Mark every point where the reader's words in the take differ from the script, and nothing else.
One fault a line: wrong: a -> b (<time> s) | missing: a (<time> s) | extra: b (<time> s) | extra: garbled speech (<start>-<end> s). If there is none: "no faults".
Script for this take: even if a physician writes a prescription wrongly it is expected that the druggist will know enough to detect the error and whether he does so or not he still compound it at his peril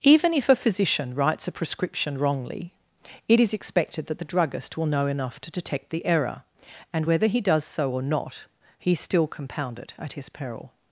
no faults